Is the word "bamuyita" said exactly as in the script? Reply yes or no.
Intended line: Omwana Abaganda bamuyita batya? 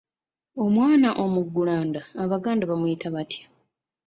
yes